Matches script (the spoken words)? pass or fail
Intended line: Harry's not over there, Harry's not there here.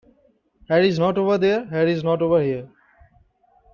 fail